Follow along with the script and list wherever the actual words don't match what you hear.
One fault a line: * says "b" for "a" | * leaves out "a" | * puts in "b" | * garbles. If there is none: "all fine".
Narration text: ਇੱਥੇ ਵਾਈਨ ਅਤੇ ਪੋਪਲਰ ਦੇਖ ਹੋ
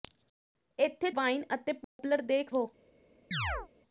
all fine